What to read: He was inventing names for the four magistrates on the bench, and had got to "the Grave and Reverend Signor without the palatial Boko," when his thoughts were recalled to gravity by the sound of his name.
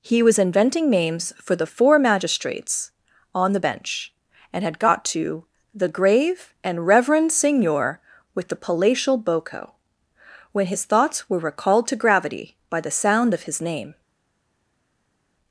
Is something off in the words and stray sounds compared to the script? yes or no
yes